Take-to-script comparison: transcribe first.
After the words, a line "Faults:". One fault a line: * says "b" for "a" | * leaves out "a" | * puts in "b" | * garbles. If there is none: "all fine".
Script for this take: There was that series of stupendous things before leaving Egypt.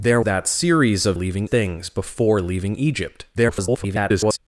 There that series of leaving things before leaving Egypt. [garbled]
Faults:
* leaves out "was"
* says "leaving" for "stupendous"
* garbles